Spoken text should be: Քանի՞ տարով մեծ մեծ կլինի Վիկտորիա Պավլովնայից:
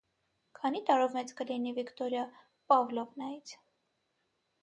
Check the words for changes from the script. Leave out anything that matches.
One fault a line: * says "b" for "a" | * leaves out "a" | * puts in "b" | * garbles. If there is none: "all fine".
* leaves out "մեծ"